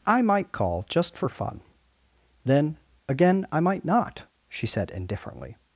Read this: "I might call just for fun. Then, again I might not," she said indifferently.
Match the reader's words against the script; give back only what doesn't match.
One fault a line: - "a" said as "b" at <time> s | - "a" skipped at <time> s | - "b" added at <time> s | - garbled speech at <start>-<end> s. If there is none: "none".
none